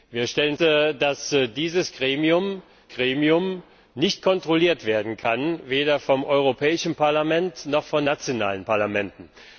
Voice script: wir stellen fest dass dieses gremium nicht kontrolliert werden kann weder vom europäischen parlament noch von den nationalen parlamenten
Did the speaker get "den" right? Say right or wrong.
wrong